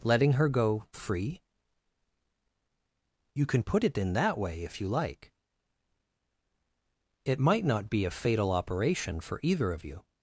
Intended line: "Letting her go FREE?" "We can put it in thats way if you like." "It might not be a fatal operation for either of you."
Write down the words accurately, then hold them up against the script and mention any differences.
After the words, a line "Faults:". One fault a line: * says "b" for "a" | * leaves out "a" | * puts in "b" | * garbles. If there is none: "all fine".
"Letting her go FREE?" "You can put it in that way if you like." "It might not be a fatal operation for either of you."
Faults:
* says "You" for "We"
* says "that" for "thats"